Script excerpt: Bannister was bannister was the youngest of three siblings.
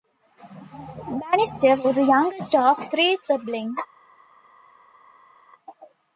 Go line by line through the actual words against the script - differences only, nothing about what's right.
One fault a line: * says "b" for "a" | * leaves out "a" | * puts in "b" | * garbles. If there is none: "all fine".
* leaves out "bannister was"